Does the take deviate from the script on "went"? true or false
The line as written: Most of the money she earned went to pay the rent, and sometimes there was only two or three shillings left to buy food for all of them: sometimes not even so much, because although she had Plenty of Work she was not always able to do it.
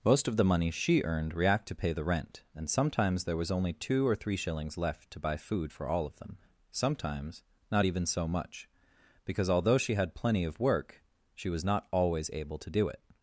true